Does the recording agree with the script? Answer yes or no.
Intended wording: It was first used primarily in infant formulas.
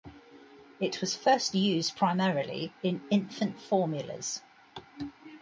yes